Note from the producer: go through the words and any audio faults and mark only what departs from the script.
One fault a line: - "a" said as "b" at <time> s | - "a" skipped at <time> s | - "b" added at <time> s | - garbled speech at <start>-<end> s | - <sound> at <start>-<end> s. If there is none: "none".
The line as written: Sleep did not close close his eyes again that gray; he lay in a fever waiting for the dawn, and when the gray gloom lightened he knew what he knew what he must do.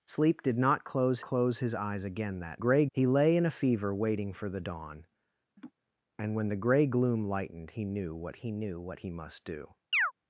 - laugh at 5.6-5.7 s
- chirp at 9.9-10.1 s